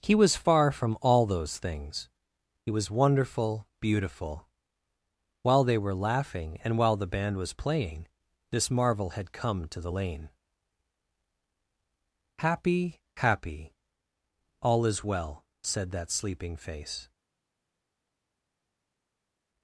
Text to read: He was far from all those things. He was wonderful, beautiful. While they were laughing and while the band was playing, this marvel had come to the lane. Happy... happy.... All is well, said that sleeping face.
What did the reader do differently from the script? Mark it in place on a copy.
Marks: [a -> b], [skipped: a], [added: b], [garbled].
He was far from all those things. He was wonderful, beautiful. While they were laughing and while the band was playing, this marvel had come to the lane. Happy... happy.... All is well, said that sleeping face.